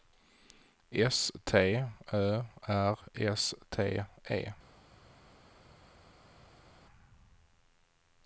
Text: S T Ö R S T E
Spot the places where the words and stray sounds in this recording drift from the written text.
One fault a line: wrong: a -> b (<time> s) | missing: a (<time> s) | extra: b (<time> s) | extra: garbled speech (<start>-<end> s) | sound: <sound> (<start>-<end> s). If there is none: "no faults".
no faults